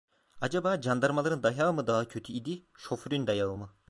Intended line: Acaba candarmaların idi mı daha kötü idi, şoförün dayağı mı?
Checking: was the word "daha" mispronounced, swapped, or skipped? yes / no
no